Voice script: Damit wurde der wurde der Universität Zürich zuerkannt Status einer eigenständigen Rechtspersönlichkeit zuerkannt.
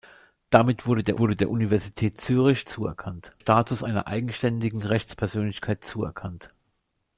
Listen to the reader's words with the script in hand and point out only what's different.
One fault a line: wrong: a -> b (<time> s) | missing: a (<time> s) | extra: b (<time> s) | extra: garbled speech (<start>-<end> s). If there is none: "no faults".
no faults